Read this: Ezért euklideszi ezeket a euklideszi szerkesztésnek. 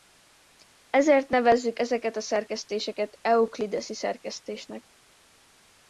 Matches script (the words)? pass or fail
fail